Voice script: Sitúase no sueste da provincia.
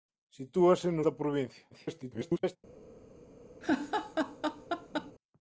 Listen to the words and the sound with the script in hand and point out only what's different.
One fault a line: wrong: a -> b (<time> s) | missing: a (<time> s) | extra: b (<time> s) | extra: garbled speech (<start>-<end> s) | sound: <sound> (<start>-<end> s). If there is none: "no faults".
missing: sueste (1.0 s)
extra: garbled speech (1.7-2.6 s)
sound: laugh (3.6-5.1 s)